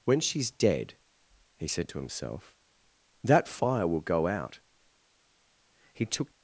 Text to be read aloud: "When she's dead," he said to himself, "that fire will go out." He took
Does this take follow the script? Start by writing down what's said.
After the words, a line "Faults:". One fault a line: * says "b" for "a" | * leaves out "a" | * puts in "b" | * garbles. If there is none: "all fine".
"When she's dead," he said to himself, "that fire will go out." He took
Faults:
all fine